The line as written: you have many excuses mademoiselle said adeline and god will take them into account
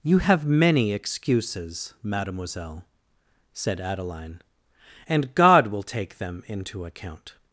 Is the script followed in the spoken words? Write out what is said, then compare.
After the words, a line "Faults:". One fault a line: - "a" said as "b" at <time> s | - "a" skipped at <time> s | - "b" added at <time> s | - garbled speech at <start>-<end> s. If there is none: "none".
you have many excuses mademoiselle said adeline and god will take them into account
Faults:
none